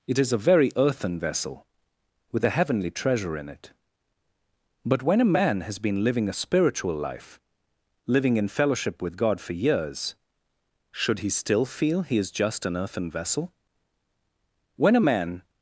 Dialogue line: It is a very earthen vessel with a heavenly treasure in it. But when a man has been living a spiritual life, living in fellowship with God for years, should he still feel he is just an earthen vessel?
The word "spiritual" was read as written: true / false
true